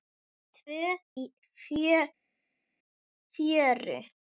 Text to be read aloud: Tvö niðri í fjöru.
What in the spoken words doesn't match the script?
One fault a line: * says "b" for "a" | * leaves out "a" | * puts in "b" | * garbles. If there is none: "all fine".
* leaves out "niðri"